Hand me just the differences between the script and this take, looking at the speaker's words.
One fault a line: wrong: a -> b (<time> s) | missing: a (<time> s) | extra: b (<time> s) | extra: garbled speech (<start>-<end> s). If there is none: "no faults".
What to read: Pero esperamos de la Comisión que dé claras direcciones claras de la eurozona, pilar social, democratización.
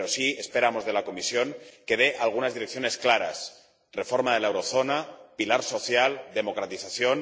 extra: sí (0.1 s)
wrong: claras -> algunas (2.2 s)
extra: reforma (3.9 s)